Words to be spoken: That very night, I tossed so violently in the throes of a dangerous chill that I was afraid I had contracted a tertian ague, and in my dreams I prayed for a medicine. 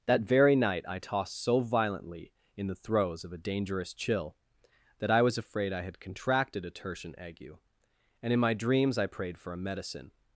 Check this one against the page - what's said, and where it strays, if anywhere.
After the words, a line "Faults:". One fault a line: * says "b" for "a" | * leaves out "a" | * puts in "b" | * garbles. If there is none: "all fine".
That very night, I tossed so violently in the throes of a dangerous chill that I was afraid I had contracted a tertian ague, and in my dreams I prayed for a medicine.
Faults:
all fine